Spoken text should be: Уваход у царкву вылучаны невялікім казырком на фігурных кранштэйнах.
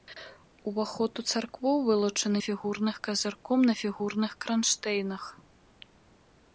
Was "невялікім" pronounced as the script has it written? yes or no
no